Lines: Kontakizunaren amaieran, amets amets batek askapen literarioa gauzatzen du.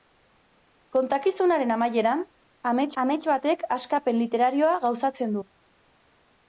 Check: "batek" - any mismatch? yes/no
no